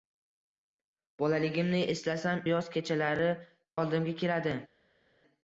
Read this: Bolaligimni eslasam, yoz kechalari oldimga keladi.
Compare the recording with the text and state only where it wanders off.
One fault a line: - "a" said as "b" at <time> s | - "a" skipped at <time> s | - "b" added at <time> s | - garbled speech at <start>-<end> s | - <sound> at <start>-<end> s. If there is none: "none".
none